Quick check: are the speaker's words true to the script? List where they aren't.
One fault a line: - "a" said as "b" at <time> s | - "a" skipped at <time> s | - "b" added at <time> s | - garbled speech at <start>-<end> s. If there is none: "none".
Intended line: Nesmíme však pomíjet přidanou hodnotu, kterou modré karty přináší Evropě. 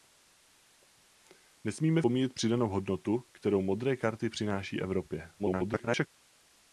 - "však" skipped at 2.0 s
- garbled speech at 5.4-6.1 s